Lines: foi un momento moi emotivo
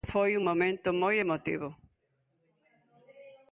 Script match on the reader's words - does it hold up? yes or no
yes